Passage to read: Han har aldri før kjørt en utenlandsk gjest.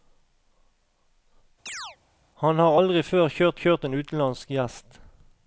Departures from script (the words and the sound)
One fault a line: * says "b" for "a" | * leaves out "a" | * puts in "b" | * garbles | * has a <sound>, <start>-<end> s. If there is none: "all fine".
* has a chirp, 1.7-2.0 s
* puts in "kjørt"